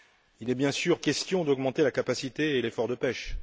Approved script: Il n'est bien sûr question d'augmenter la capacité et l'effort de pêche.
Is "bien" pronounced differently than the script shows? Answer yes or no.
no